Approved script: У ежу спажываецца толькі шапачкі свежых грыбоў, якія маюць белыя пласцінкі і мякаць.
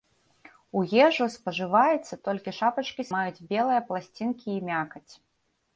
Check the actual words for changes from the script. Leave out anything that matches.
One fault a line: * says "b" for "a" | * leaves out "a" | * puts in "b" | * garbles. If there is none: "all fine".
* leaves out "свежых грыбоў якія"